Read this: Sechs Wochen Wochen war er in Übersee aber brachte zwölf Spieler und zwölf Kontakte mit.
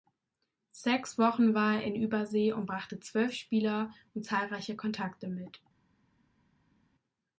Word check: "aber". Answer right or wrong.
wrong